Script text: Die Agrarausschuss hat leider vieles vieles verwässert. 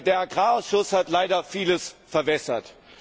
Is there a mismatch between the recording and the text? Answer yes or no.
yes